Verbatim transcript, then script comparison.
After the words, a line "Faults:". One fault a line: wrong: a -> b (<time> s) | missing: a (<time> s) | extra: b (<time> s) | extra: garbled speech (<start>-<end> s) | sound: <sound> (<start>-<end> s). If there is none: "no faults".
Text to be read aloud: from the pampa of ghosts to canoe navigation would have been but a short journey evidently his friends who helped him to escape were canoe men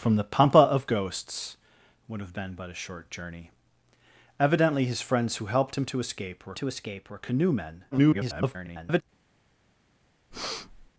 from the pampa of ghosts would have been but a short journey evidently his friends who helped him to escape were to escape were canoe men [garbled]
Faults:
missing: to canoe navigation (1.6 s)
extra: to escape were (6.5 s)
extra: garbled speech (7.9-9.0 s)
sound: breath (10.3-10.9 s)